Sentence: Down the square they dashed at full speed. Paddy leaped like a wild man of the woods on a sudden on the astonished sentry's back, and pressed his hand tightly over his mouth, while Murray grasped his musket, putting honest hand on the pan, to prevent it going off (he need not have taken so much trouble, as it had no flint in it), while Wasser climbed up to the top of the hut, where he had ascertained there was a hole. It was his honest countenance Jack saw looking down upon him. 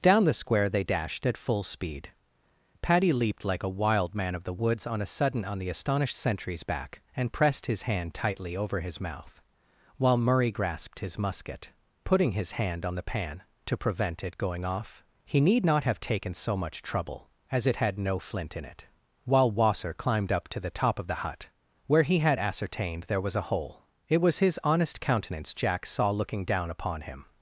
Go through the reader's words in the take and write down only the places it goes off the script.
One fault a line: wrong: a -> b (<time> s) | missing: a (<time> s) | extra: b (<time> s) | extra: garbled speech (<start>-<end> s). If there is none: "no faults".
wrong: honest -> his (12.3 s)